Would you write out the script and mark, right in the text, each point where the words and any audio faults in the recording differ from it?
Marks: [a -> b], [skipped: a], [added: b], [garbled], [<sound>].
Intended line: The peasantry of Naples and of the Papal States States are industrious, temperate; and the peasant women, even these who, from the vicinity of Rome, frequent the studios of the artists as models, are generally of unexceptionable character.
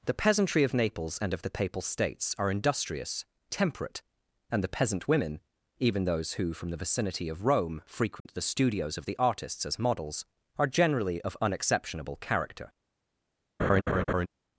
The peasantry of Naples and of the Papal States [skipped: States] are industrious, temperate; and the peasant women, even [these -> those] who, from the vicinity of Rome, frequent [dropout] the studios of the artists as models, are generally of unexceptionable character. [laugh]